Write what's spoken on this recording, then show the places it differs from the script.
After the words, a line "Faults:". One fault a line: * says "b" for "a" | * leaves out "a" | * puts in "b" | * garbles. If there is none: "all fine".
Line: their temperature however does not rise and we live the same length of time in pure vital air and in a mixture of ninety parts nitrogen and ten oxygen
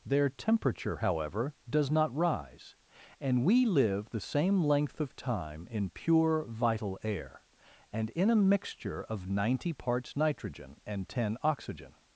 their temperature however does not rise and we live the same length of time in pure vital air and in a mixture of ninety parts nitrogen and ten oxygen
Faults:
all fine